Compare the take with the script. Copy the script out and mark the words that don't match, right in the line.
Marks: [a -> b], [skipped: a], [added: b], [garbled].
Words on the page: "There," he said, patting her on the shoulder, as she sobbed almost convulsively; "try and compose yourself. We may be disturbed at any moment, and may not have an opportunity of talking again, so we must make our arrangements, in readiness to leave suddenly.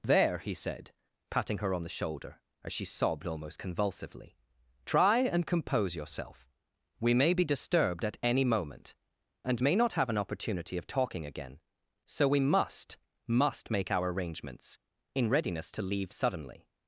"There," he said, patting her on the shoulder, as she sobbed almost convulsively; "try and compose yourself. We may be disturbed at any moment, and may not have an opportunity of talking again, so we must [added: must] make our arrangements, in readiness to leave suddenly.